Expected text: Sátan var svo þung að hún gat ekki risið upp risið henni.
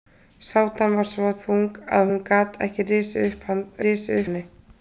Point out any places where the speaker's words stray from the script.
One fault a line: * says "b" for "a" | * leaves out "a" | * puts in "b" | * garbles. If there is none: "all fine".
all fine